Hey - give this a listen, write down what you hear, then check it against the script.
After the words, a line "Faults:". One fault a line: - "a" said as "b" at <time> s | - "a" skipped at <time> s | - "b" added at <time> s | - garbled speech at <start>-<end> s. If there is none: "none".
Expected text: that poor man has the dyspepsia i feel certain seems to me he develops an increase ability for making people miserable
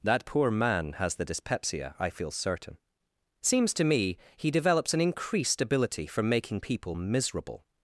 that poor man has the dyspepsia i feel certain seems to me he develops an increased ability for making people miserable
Faults:
- "increase" said as "increased" at 5.0 s